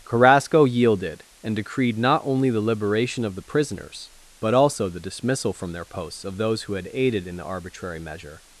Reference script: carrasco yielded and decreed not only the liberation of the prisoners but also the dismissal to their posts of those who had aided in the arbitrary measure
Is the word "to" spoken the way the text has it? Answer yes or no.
no